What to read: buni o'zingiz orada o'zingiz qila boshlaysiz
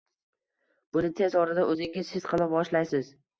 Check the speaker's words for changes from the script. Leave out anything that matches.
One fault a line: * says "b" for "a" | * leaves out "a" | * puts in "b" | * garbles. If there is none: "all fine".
* says "tez" for "o'zingiz"
* puts in "his"